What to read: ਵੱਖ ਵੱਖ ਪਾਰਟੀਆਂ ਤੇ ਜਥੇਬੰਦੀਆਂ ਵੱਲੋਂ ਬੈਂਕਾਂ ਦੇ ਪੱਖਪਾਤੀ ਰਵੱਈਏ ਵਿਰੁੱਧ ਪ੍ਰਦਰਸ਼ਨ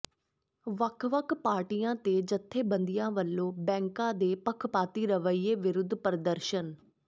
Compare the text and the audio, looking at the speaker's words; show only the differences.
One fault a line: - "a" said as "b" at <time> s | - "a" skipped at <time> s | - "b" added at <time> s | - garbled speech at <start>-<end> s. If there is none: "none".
none